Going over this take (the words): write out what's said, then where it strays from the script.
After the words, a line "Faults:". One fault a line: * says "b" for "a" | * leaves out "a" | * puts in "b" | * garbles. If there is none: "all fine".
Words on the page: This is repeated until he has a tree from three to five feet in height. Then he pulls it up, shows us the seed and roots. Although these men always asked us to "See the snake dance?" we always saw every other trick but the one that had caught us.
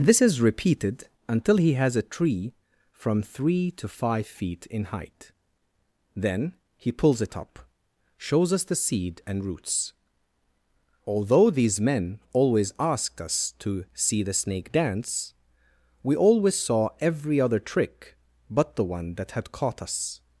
This is repeated until he has a tree from three to five feet in height. Then he pulls it up, shows us the seed and roots. Although these men always asked us to "See the snake dance?" we always saw every other trick but the one that had caught us.
Faults:
all fine